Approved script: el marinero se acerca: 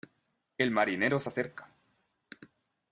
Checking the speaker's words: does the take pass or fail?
pass